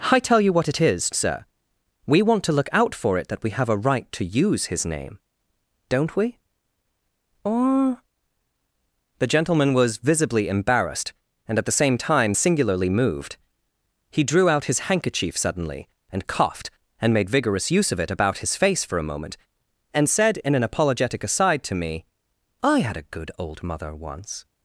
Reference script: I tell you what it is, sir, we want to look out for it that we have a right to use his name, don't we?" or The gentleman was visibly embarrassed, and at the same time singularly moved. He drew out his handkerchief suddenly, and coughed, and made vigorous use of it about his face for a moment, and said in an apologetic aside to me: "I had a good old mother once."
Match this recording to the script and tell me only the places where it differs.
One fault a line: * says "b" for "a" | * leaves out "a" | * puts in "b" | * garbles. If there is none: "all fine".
all fine